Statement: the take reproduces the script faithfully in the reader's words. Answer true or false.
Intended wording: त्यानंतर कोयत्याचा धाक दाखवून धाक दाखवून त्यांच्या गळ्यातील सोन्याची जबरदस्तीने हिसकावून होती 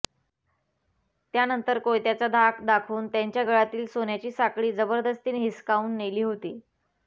false